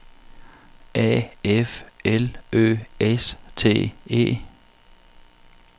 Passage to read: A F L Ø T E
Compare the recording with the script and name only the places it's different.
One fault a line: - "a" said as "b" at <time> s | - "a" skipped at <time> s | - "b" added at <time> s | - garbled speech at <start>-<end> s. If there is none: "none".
- "S" added at 3.0 s